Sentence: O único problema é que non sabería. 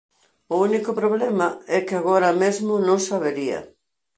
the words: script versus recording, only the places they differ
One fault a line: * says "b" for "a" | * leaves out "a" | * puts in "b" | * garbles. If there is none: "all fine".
* puts in "agora mesmo"